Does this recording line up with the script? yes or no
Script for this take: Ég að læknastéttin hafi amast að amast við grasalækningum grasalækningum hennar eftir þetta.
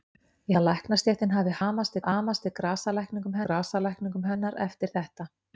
yes